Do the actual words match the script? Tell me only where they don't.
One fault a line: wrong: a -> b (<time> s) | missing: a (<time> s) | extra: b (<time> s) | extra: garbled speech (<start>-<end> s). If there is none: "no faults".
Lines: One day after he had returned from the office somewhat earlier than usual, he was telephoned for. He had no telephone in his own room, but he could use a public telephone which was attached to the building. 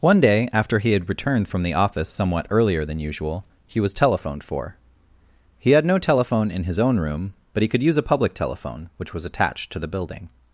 no faults